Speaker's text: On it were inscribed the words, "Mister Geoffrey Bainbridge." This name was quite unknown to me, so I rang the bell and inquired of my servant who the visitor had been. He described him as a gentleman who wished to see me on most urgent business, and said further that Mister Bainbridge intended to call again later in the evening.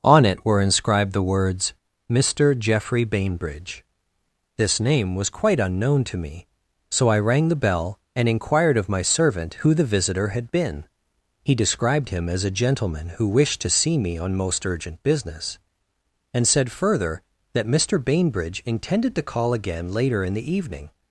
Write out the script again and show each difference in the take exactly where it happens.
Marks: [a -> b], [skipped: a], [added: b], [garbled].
On it were inscribed the words, "Mister Geoffrey Bainbridge." This name was quite unknown to me, so I rang the bell and inquired of my servant who the visitor had been. He described him as a gentleman who wished to see me on most urgent business, and said further that Mister Bainbridge intended to call again later in the evening.